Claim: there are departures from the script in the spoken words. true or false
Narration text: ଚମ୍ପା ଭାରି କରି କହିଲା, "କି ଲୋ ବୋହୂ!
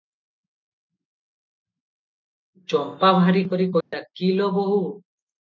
false